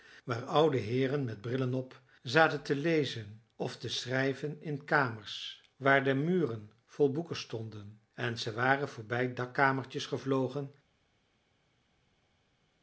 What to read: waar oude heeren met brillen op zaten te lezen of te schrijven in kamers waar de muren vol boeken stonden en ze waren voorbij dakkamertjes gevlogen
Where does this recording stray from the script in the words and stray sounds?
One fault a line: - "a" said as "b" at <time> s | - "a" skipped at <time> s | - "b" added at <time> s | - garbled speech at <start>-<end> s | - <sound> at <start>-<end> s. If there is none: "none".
none